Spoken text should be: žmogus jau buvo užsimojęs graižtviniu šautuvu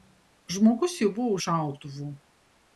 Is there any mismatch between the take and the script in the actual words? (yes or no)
yes